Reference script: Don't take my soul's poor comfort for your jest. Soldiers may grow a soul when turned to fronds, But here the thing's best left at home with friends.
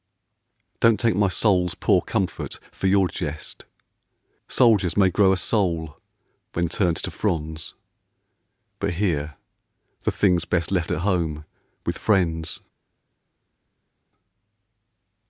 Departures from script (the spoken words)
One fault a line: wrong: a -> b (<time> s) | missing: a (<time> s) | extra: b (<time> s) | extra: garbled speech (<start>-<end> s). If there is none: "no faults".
no faults